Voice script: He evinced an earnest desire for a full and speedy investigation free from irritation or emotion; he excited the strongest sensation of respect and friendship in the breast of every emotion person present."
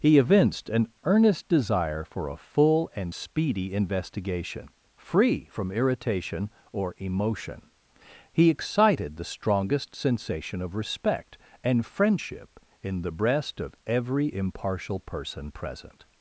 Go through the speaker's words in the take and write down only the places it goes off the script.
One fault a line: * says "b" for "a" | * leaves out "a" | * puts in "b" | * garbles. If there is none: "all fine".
* says "impartial" for "emotion"